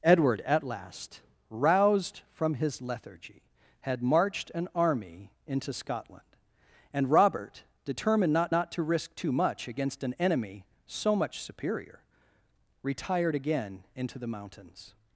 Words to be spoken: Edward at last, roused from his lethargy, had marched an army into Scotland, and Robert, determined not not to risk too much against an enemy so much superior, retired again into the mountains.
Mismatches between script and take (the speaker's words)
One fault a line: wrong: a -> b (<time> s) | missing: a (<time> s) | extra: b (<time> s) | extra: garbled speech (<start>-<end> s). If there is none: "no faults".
no faults